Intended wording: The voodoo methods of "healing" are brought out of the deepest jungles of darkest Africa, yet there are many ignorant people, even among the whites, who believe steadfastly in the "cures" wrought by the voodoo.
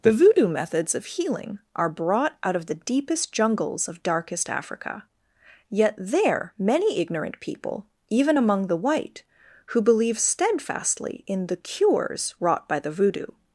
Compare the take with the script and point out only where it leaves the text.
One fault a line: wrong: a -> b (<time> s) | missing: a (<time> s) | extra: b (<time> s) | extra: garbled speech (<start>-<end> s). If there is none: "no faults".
missing: are (6.5 s)
wrong: whites -> white (8.8 s)